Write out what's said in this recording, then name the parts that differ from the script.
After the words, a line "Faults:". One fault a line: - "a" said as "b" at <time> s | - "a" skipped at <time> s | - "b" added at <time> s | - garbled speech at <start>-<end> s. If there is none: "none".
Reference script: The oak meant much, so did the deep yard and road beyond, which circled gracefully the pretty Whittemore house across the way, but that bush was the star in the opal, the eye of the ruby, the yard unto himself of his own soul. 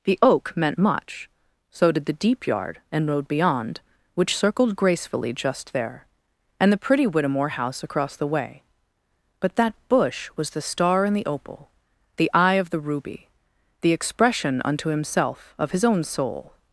The oak meant much, so did the deep yard and road beyond, which circled gracefully just there, and the pretty Whittemore house across the way, but that bush was the star in the opal, the eye of the ruby, the expression unto himself of his own soul.
Faults:
- "just there and" added at 5.3 s
- "yard" said as "expression" at 13.9 s